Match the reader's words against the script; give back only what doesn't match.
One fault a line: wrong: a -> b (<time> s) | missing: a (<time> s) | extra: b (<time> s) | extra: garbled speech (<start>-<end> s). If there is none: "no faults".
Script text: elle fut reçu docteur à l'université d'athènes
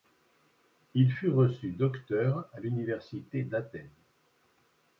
wrong: elle -> il (0.9 s)